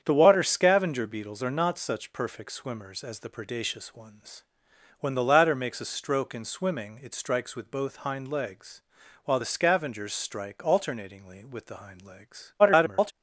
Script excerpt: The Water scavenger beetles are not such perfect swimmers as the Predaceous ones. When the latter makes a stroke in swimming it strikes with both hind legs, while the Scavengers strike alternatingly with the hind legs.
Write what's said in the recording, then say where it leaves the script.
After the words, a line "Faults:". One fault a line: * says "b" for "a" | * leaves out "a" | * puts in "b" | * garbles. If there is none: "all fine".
The Water scavenger beetles are not such perfect swimmers as the Predaceous ones. When the latter makes a stroke in swimming it strikes with both hind legs, while the Scavengers strike alternatingly with the hind legs. [garbled]
Faults:
* garbles